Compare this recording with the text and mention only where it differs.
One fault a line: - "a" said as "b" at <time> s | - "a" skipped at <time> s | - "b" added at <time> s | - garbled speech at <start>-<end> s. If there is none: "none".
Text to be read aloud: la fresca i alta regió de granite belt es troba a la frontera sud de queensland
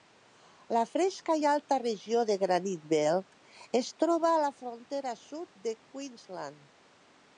none